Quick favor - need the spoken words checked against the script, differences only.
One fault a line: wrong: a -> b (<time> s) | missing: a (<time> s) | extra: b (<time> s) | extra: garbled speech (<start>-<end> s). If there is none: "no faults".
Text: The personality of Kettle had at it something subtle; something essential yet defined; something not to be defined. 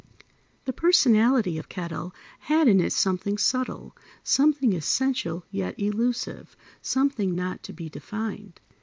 wrong: at -> in (2.7 s)
wrong: defined -> elusive (5.8 s)